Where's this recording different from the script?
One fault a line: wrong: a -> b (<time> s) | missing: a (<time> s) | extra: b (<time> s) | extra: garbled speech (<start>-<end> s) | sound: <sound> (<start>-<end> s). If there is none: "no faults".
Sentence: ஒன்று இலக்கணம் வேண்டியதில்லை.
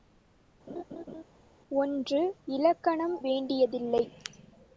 sound: laugh (0.7-1.2 s)